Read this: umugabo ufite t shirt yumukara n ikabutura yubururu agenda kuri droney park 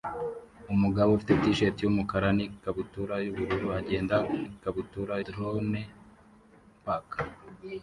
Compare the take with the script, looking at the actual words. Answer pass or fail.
fail